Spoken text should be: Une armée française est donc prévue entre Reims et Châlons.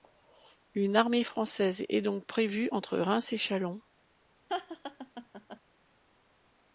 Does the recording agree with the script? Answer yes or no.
yes